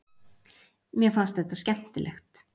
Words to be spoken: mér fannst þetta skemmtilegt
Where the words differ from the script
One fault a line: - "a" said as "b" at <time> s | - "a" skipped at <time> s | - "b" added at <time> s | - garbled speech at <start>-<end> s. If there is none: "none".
none